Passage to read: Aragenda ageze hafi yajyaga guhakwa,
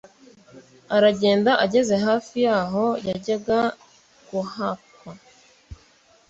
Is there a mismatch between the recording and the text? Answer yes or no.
yes